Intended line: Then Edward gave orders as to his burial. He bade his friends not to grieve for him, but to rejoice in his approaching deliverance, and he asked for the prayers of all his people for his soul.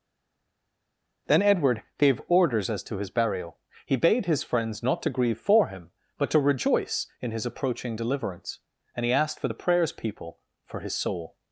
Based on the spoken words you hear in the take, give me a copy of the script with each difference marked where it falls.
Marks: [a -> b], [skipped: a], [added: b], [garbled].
Then Edward gave orders as to his burial. He bade his friends not to grieve for him, but to rejoice in his approaching deliverance, and he asked for the prayers [skipped: of all his] people for his soul.